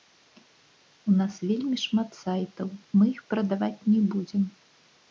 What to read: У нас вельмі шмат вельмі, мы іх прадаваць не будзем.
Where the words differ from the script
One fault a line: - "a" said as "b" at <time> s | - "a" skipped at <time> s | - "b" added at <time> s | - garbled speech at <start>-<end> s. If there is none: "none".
- "вельмі" said as "сайтаў" at 2.2 s